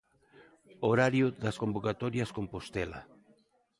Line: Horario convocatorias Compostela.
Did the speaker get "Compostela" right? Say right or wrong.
right